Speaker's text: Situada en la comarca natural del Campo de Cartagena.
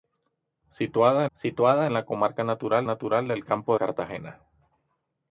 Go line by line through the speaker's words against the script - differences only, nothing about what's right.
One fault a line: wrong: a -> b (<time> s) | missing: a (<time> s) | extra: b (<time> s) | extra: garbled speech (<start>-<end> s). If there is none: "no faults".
extra: situada (1.4 s)
extra: natural (2.8 s)
missing: de (3.7 s)